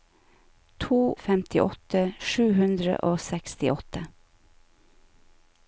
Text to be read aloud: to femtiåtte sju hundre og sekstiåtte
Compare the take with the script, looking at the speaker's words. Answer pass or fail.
pass